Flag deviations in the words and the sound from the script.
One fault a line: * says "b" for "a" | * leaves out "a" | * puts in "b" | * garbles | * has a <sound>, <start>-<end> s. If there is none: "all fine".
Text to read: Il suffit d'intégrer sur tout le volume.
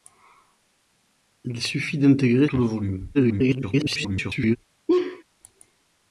* leaves out "sur"
* garbles
* has a laugh, 4.9-5.2 s